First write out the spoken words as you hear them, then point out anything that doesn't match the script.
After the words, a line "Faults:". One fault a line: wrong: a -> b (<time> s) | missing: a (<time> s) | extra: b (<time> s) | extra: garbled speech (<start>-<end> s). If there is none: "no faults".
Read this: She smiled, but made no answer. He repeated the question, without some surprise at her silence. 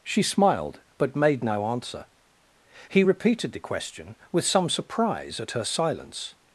She smiled, but made no answer. He repeated the question, with some surprise at her silence.
Faults:
wrong: without -> with (4.3 s)